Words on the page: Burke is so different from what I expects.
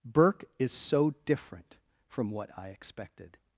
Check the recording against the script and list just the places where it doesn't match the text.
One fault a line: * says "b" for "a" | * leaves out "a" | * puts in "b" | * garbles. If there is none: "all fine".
* says "expected" for "expects"